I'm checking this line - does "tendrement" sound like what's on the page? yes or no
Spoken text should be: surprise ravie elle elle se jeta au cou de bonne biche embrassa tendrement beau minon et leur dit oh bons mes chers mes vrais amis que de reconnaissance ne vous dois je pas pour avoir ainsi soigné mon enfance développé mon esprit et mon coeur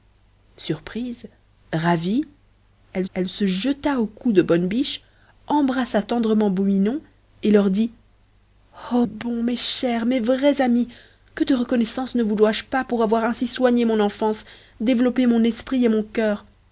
yes